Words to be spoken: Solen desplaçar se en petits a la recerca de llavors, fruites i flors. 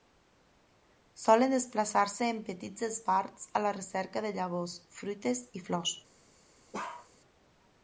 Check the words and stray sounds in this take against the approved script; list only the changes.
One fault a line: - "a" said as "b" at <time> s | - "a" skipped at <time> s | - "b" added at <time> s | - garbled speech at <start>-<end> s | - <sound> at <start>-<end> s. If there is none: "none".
- "esbarts" added at 2.9 s
- bark at 6.7-7.1 s